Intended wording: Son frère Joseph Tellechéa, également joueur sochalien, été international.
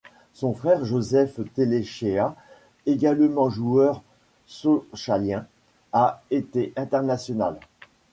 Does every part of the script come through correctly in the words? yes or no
no